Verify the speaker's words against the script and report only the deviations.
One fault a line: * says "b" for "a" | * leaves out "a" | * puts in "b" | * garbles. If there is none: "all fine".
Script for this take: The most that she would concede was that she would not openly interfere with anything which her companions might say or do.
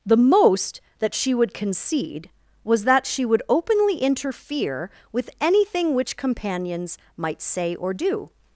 * leaves out "not"
* leaves out "her"